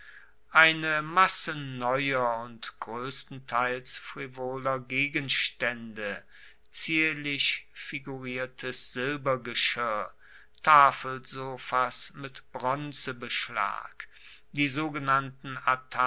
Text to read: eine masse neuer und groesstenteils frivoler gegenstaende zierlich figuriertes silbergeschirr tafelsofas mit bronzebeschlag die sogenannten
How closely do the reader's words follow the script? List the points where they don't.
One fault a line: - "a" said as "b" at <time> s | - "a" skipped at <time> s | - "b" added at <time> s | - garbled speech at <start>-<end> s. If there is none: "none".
none